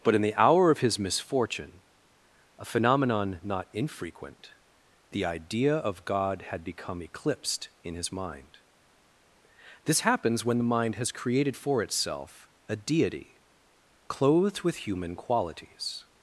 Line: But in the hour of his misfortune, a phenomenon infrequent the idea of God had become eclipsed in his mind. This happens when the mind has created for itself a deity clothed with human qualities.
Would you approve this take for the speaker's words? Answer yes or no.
no